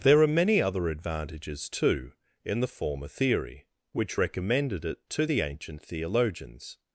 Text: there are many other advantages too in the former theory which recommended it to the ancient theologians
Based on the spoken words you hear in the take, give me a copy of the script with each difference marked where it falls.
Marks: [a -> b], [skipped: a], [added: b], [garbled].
there are many other advantages too in the former theory which recommended it to the ancient theologians